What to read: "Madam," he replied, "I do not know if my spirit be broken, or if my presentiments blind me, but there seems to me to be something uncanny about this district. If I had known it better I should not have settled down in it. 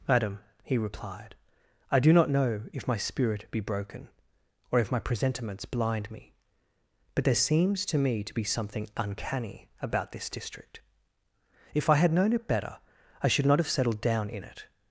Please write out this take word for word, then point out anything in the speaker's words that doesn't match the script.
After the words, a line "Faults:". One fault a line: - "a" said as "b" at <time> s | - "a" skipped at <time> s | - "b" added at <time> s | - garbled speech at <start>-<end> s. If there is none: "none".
"Madam," he replied, "I do not know if my spirit be broken, or if my presentiments blind me, but there seems to me to be something uncanny about this district. If I had known it better I should not have settled down in it.
Faults:
none